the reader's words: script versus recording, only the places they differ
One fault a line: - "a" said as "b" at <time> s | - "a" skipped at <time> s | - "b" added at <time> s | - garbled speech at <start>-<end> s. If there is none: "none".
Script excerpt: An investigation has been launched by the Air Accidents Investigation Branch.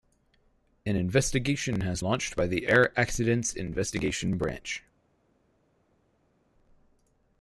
- "been" skipped at 2.0 s